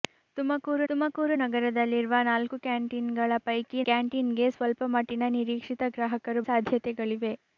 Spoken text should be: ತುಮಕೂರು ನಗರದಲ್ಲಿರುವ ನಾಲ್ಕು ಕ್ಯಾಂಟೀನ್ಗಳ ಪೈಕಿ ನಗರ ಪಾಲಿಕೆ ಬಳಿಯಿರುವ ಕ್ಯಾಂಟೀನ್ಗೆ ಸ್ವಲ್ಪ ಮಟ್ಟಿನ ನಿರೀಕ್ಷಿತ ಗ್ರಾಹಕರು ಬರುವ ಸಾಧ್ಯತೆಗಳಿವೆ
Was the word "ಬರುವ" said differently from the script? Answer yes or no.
yes